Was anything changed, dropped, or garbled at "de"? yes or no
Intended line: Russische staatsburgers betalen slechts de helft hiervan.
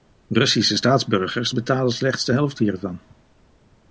no